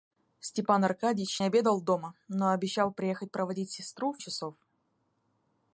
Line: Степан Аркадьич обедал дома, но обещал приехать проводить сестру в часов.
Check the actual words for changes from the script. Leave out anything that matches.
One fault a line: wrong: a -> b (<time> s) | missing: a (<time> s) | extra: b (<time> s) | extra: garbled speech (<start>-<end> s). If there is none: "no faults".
no faults